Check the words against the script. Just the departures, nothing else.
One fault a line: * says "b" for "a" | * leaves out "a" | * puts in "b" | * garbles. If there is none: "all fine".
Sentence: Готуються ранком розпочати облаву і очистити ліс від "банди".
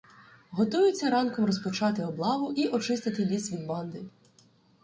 all fine